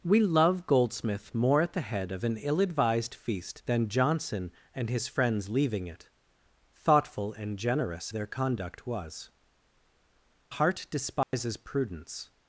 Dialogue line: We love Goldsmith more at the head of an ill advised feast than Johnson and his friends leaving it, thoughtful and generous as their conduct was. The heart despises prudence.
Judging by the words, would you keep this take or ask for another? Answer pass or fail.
fail